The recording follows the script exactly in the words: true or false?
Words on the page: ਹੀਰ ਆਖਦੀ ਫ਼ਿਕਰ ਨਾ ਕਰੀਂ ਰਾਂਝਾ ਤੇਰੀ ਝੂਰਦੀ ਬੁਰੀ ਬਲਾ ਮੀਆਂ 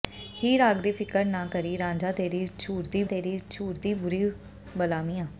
false